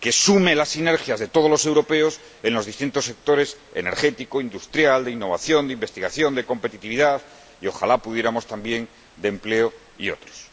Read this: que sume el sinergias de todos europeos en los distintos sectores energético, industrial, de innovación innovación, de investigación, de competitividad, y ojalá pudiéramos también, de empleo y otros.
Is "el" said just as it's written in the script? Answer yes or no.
no